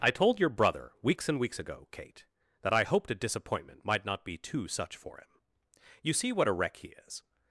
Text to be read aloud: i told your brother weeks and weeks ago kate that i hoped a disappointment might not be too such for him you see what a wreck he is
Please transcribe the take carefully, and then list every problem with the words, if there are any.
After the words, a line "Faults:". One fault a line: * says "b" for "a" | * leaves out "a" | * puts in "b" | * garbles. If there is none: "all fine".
i told your brother weeks and weeks ago kate that i hoped a disappointment might not be too such for him you see what a wreck he is
Faults:
all fine